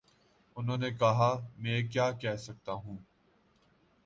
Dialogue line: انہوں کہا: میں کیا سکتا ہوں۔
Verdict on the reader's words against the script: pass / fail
fail